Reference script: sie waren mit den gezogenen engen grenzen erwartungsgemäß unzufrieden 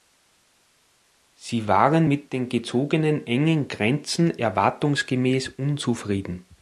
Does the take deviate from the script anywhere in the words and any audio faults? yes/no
no